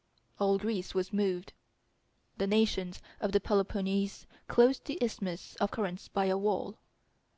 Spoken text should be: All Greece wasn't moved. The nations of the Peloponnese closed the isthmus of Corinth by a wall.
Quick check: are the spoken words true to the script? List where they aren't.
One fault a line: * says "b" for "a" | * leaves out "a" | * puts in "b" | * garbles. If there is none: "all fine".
* says "was" for "wasn't"